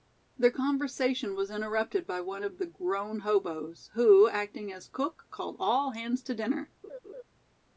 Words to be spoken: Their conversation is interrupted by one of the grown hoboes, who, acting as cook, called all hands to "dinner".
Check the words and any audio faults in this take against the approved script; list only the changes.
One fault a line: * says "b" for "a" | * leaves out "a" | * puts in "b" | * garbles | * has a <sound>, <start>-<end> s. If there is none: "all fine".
* says "was" for "is"
* has a laugh, 6.8-7.2 s